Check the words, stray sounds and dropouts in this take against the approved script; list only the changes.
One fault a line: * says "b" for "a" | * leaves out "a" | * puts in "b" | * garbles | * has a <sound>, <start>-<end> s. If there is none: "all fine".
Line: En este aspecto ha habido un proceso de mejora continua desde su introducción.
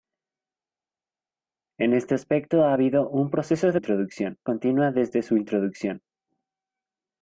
* says "introducción" for "mejora"